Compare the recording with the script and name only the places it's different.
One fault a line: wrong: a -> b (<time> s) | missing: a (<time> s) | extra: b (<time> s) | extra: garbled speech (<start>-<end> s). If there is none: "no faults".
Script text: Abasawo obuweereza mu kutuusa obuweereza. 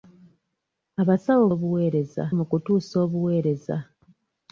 no faults